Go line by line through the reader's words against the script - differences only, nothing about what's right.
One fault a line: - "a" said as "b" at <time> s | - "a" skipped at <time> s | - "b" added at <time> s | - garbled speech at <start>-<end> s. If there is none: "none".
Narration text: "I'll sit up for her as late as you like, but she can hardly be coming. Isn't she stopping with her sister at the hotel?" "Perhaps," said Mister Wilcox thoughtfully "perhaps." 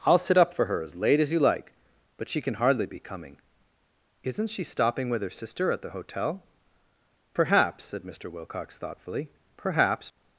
none